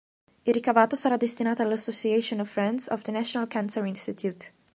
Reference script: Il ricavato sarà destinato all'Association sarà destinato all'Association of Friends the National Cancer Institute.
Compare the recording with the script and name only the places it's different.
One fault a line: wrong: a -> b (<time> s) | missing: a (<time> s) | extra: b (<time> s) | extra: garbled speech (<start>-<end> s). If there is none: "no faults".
wrong: sarà destinato all'Association -> of Friends (2.4 s)
missing: Friends (3.0 s)